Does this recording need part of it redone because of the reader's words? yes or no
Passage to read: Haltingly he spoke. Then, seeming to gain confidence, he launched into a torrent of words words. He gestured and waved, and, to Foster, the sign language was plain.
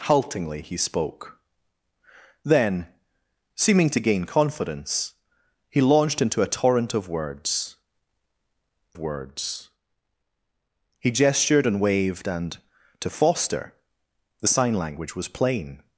no